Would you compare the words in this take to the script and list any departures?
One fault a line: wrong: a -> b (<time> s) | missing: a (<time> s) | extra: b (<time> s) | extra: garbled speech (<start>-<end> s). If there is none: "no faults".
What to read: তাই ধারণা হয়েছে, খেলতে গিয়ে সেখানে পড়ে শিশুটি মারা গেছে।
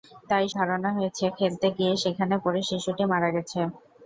no faults